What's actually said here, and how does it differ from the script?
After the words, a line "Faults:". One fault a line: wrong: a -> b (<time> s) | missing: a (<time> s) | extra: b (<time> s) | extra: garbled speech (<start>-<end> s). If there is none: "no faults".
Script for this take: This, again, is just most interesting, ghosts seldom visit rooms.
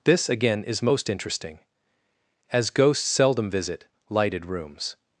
This, again, is most interesting, as ghosts seldom visit lighted rooms.
Faults:
missing: just (0.8 s)
extra: as (2.5 s)
extra: lighted (4.1 s)